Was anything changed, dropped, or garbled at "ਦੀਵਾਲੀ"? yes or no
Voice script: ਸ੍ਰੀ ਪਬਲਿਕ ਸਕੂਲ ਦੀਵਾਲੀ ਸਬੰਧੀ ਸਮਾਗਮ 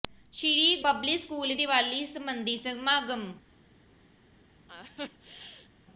no